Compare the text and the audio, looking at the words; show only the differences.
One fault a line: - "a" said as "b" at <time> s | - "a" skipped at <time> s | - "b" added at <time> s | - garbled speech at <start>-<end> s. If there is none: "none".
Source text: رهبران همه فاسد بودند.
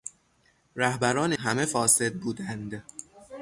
none